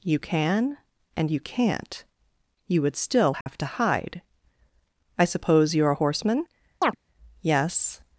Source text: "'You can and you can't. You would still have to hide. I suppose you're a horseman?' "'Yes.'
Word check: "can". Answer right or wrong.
right